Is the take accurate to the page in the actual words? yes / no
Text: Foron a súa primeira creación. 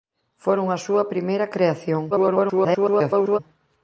no